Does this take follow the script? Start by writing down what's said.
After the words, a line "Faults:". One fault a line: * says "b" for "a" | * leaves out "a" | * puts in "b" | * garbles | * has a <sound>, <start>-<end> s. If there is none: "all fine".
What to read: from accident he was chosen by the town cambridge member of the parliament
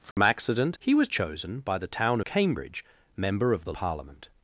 from accident he was chosen by the town cambridge member of the parliament
Faults:
* has a dropout, 0.1-0.2 s